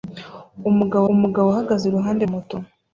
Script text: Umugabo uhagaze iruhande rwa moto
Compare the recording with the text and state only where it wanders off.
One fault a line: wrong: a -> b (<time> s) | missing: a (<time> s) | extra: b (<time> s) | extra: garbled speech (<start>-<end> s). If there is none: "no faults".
extra: umugabo (1.1 s)
missing: rwa (2.2 s)